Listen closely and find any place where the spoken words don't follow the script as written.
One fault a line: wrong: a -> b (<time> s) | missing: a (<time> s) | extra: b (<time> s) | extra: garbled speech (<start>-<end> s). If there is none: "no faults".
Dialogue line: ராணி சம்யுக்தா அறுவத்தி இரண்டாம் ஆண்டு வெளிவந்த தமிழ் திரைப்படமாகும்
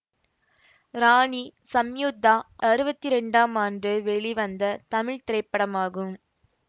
no faults